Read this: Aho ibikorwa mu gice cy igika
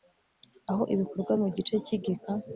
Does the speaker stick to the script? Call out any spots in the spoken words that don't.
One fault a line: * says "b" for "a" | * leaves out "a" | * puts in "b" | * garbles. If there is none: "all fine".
all fine